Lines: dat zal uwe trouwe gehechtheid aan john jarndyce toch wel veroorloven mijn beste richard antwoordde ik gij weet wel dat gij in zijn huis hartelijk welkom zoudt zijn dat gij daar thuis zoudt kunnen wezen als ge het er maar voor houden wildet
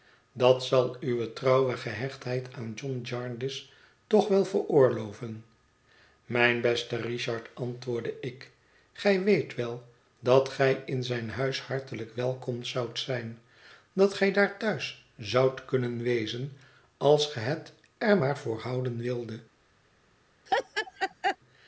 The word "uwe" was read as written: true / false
true